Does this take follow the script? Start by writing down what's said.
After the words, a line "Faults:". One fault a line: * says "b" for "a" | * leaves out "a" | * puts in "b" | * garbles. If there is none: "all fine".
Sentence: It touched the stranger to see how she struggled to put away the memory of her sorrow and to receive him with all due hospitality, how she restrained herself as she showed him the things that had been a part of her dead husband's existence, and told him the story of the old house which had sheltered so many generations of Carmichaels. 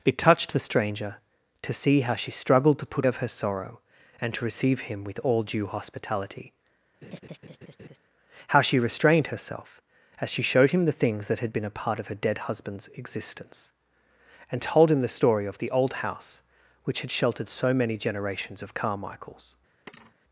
It touched the stranger to see how she struggled to put of her sorrow and to receive him with all due hospitality, how she restrained herself as she showed him the things that had been a part of her dead husband's existence, and told him the story of the old house which had sheltered so many generations of Carmichaels.
Faults:
* leaves out "away the memory"